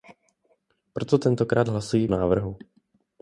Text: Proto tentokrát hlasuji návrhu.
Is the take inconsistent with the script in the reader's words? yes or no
no